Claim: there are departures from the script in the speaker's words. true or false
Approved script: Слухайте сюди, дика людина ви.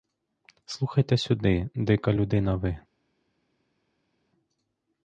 false